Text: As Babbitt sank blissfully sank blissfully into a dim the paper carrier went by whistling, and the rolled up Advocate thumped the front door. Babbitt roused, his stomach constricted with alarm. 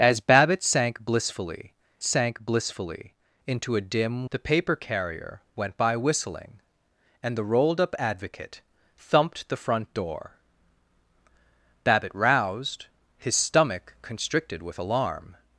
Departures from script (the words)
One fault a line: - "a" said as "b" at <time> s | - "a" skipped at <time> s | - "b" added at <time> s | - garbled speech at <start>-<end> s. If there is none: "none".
none